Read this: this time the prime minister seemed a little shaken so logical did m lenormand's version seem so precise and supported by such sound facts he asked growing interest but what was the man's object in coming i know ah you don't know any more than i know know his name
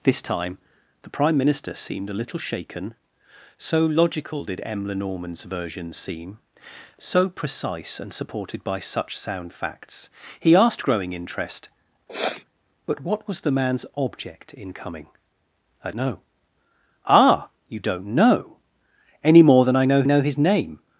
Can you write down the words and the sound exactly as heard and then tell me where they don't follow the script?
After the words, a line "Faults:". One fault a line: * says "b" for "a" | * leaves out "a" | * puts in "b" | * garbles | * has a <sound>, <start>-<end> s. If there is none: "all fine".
this time the prime minister seemed a little shaken so logical did m lenormand's version seem so precise and supported by such sound facts he asked growing interest but what was the man's object in coming i know ah you don't know any more than i know know his name
Faults:
* has a sniff, 12.1-12.5 s